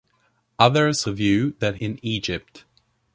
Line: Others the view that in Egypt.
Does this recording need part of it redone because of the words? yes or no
no